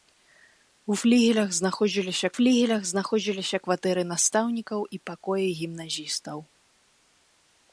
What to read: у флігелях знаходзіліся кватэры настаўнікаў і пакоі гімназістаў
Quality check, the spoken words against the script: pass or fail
fail